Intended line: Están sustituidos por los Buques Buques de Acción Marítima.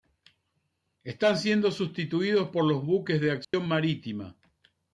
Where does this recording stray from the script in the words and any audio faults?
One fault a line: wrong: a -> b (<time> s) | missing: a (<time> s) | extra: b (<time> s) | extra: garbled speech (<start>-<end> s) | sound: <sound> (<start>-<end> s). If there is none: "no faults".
extra: siendo (1.4 s)
missing: Buques (3.2 s)
sound: dropout (3.4-3.5 s)